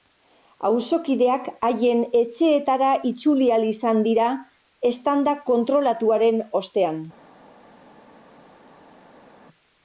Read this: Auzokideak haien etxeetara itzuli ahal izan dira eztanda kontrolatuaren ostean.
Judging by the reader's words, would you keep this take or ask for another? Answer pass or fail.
pass